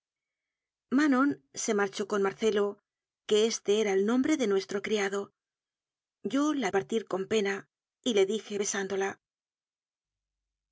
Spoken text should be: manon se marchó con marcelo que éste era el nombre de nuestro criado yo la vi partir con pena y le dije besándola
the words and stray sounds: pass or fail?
fail